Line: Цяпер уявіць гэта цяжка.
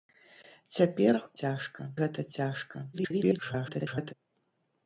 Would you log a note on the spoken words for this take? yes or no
yes